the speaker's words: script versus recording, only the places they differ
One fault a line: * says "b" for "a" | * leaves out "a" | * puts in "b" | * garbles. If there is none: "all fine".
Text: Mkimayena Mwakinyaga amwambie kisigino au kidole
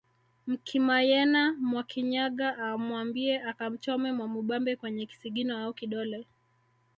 * puts in "akamchome Mwamubambe kwenye"